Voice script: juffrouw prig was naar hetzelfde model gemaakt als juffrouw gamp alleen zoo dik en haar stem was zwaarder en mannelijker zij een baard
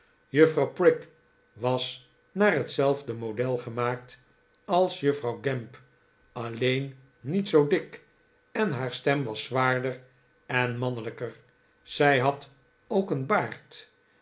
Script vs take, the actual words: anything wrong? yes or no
yes